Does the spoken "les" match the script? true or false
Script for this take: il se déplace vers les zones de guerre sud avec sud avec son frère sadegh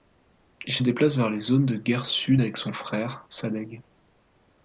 true